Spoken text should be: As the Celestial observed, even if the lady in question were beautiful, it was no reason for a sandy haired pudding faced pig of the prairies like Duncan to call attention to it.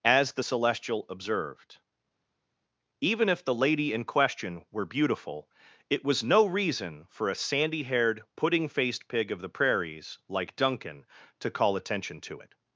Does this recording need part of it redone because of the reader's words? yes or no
no